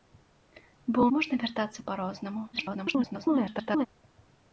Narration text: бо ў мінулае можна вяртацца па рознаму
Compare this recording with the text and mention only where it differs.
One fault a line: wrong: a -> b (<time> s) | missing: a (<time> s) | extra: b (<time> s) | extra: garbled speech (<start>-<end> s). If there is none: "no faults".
missing: мінулае (1.1 s)
extra: garbled speech (2.5-3.9 s)